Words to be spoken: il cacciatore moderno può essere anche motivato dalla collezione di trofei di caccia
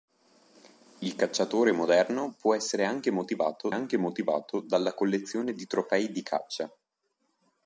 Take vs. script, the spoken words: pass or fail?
fail